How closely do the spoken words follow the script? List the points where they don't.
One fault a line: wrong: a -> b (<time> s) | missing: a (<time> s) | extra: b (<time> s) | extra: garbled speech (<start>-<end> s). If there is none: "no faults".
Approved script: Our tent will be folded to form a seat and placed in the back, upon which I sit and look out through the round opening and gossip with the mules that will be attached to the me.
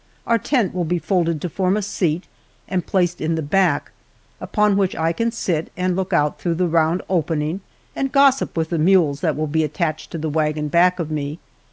extra: can (5.1 s)
extra: wagon back of (10.3 s)